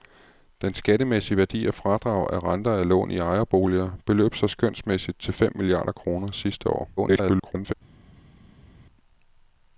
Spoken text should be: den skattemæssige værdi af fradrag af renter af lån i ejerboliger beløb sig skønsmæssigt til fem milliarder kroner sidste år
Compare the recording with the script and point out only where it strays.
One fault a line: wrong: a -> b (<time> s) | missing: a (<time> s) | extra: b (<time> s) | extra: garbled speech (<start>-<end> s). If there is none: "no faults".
extra: garbled speech (7.0-7.7 s)